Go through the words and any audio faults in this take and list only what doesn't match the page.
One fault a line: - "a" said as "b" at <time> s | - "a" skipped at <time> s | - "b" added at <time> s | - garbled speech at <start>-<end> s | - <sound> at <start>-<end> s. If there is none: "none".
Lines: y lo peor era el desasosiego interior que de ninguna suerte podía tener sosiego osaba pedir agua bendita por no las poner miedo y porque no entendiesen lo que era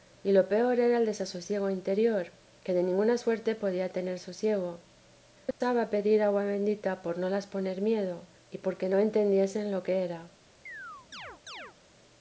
- dropout at 5.5-5.6 s
- chirp at 10.7-11.8 s